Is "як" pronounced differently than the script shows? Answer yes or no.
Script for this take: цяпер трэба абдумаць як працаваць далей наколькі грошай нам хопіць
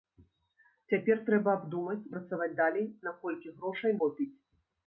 yes